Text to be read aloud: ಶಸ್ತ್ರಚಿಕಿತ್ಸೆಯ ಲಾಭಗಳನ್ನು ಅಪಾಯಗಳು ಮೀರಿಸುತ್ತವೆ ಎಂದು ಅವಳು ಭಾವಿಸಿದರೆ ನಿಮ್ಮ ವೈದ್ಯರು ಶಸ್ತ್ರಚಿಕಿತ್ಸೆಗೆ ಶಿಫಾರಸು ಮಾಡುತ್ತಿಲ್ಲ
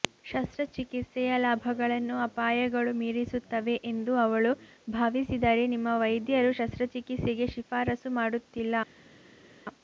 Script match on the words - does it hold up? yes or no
yes